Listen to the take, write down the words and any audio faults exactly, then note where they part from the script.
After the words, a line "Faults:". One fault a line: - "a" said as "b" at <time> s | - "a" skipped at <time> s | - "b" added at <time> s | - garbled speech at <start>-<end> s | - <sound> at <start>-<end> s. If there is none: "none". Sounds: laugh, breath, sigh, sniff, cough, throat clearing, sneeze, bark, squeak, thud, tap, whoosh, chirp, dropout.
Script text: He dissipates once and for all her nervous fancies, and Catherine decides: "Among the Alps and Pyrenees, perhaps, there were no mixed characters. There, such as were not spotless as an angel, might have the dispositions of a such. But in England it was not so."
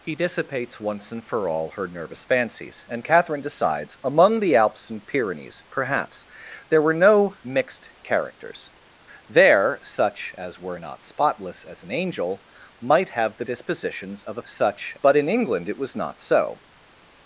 He dissipates once and for all her nervous fancies, and Catherine decides: "Among the Alps and Pyrenees, perhaps, there were no mixed characters. There, such as were not spotless as an angel, might have the dispositions of a such. But in England it was not so."
Faults:
none